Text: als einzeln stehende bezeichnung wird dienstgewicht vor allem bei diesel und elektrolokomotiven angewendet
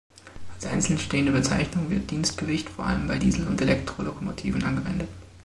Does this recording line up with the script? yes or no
yes